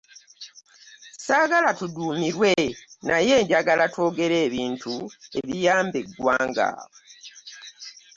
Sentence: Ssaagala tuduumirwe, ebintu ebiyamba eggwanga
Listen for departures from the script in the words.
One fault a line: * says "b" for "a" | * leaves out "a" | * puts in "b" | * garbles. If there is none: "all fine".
* puts in "naye njagala twogere"